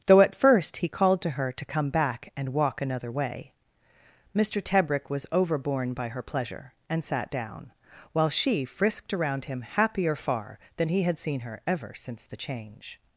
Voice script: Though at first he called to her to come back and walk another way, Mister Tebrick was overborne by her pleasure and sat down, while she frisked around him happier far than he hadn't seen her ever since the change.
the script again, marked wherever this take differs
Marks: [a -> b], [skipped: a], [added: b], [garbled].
Though at first he called to her to come back and walk another way, Mister Tebrick was overborne by her pleasure and sat down, while she frisked around him happier far than he [hadn't -> had] seen her ever since the change.